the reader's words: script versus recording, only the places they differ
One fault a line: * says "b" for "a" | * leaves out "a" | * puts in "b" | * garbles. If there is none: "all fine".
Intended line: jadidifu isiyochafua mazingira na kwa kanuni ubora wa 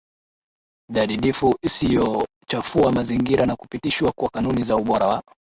* puts in "kupitishwa"
* puts in "za"